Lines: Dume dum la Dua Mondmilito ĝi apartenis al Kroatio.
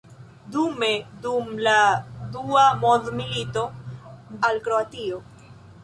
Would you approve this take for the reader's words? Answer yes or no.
no